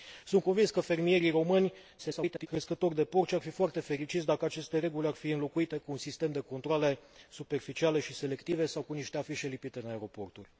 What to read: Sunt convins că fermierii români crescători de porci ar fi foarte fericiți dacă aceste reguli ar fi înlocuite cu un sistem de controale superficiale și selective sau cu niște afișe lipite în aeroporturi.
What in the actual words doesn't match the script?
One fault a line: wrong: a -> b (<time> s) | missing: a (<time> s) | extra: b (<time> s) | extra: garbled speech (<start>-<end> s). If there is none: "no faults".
extra: garbled speech (2.0-2.5 s)